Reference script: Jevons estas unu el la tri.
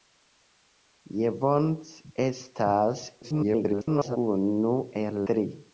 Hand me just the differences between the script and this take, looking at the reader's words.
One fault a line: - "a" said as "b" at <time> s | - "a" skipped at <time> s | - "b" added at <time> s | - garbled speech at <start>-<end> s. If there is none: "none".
- garbled speech at 3.2-4.2 s
- "la" skipped at 5.2 s